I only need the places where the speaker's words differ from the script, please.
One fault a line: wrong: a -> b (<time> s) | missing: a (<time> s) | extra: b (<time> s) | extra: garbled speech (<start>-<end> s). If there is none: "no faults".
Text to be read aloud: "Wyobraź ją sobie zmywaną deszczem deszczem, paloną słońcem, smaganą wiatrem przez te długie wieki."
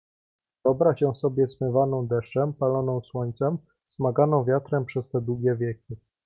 missing: deszczem (2.5 s)